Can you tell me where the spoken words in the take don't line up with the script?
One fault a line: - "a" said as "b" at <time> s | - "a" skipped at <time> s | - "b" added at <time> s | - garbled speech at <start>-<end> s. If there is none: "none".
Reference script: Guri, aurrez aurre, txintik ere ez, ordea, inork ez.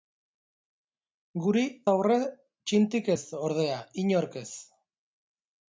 - "aurrez" skipped at 1.6 s
- "ere" skipped at 3.1 s